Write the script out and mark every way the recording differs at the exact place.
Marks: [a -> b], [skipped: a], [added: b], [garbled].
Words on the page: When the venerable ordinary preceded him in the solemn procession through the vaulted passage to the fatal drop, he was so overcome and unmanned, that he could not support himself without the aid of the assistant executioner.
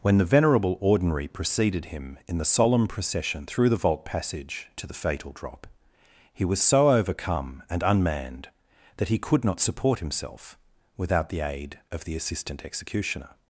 When the venerable ordinary preceded him in the solemn procession through the [vaulted -> vault] passage to the fatal drop, he was so overcome and unmanned, that he could not support himself without the aid of the assistant executioner.